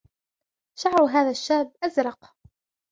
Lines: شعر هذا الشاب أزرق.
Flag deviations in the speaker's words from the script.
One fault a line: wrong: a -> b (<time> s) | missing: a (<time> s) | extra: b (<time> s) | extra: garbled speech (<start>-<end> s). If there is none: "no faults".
no faults